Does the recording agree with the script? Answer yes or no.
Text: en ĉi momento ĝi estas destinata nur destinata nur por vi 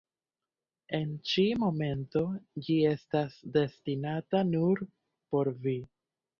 no